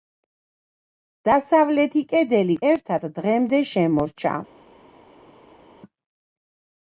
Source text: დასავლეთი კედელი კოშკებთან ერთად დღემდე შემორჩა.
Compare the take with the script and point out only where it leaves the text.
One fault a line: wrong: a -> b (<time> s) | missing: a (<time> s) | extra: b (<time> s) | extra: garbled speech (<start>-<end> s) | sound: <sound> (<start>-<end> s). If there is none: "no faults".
missing: კოშკებთან (2.6 s)